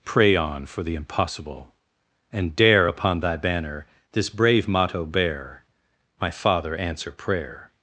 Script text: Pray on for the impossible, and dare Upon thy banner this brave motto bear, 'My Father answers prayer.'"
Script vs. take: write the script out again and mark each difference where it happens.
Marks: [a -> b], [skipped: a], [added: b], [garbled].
Pray on for the impossible, and dare Upon thy banner this brave motto bear, 'My Father [answers -> answer] prayer.'"